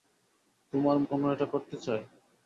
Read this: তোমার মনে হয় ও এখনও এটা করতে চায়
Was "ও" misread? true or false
true